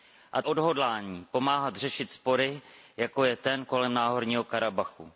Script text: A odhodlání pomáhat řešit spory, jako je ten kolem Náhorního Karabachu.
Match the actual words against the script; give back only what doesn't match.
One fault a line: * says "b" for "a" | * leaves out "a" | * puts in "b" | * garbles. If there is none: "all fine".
all fine